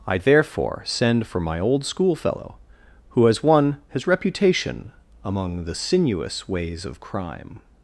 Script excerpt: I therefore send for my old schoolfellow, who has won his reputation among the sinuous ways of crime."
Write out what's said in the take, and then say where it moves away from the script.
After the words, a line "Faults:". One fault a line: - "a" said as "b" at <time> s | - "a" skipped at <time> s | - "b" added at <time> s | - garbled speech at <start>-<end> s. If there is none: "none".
I therefore send for my old schoolfellow, who has won his reputation among the sinuous ways of crime."
Faults:
none